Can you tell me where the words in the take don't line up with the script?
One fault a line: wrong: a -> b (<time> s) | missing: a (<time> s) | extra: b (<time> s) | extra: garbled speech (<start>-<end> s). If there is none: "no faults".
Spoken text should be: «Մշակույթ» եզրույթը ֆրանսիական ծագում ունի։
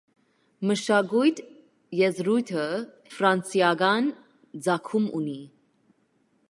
no faults